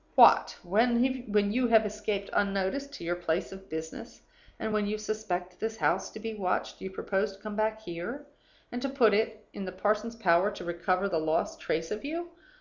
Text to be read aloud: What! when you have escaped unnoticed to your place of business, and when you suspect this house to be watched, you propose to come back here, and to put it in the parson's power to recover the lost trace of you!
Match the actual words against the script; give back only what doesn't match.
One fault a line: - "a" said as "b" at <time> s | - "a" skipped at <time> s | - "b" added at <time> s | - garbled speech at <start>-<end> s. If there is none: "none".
none